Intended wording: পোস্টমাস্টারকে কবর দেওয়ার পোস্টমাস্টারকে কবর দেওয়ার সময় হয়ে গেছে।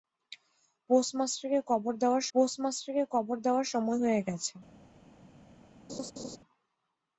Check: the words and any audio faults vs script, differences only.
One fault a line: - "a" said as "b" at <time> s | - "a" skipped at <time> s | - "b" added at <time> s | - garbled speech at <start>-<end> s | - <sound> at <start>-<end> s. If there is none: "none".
- laugh at 5.9-6.4 s